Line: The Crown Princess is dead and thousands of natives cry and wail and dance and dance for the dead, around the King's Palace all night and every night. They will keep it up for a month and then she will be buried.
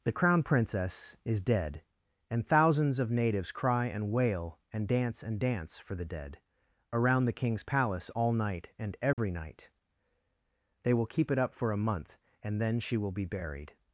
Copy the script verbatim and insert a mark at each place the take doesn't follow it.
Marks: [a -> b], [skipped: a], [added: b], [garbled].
The Crown Princess is dead and thousands of natives cry and wail and dance and dance for the dead, around the King's Palace all night and every night. They will keep it up for a month and then she will be buried.